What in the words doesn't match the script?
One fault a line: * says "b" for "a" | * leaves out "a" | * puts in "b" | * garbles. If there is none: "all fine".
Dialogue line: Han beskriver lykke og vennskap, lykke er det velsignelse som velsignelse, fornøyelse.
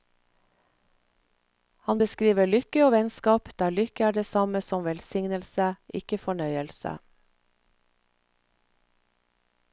* puts in "der"
* says "samme" for "velsignelse"
* puts in "ikke"